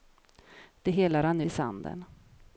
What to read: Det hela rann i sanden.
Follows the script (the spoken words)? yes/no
yes